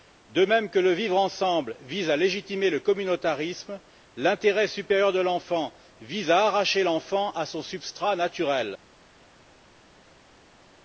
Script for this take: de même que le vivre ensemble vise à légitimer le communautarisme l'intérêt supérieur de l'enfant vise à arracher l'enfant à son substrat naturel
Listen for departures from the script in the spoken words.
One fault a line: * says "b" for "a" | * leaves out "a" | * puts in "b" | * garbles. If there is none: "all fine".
all fine